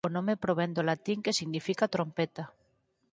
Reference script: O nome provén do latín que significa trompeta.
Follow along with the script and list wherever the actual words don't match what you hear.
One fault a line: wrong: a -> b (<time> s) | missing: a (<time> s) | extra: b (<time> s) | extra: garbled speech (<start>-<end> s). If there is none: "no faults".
no faults